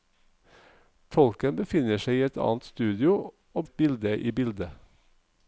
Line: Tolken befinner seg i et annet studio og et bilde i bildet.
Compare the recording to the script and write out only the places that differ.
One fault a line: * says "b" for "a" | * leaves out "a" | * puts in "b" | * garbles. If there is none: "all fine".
all fine